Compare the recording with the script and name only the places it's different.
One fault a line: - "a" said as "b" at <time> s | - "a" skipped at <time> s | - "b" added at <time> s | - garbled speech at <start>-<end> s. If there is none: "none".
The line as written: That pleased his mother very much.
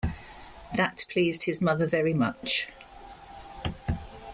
none